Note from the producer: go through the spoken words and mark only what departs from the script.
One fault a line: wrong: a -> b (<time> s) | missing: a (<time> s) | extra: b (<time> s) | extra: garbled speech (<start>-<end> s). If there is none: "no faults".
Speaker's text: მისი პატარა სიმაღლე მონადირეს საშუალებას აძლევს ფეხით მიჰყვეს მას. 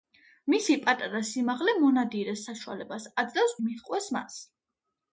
missing: ფეხით (3.6 s)